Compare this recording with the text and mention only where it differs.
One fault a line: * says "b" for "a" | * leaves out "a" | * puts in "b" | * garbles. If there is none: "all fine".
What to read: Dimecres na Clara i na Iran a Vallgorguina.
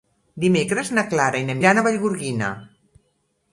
all fine